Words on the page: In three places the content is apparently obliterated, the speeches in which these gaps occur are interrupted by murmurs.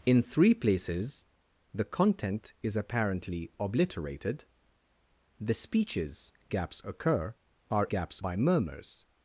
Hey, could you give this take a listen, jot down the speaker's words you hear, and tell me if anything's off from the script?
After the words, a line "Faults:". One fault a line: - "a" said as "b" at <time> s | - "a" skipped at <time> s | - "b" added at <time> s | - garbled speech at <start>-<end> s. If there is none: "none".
In three places the content is apparently obliterated, the speeches gaps occur are gaps by murmurs.
Faults:
- "in which these" skipped at 6.3 s
- "interrupted" said as "gaps" at 7.9 s